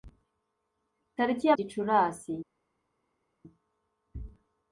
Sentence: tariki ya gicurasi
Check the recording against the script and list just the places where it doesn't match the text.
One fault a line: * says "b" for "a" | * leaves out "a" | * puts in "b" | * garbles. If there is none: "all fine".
all fine